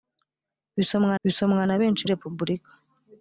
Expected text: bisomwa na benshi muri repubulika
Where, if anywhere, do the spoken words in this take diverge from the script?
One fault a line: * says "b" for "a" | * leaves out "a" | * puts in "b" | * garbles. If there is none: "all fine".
* puts in "bisomwa"
* leaves out "muri"